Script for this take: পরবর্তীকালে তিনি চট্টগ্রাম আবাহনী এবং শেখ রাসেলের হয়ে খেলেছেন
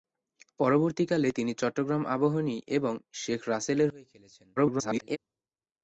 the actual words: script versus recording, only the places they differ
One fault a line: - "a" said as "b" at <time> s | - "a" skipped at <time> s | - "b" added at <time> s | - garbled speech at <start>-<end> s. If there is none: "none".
- garbled speech at 4.6-5.2 s